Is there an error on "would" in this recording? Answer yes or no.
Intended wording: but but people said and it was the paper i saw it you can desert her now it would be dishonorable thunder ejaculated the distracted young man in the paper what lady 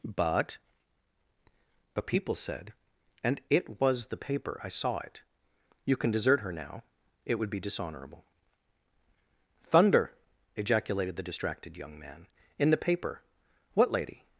no